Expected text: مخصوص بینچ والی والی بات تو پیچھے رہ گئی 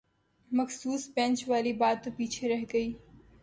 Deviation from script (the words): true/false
true